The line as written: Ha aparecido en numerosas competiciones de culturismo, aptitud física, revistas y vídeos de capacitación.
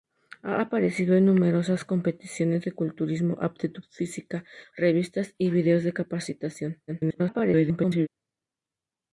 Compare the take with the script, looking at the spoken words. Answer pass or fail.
fail